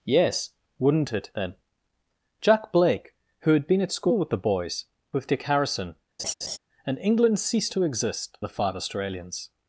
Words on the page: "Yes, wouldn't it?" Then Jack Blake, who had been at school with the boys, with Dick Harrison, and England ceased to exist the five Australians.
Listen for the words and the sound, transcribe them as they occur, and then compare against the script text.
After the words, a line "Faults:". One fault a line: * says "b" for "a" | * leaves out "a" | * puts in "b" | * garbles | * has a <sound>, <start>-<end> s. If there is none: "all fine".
"Yes, wouldn't it?" Then Jack Blake, who had been at school with the boys, with Dick Harrison, and England ceased to exist the five Australians.
Faults:
* has a laugh, 6.2-6.6 s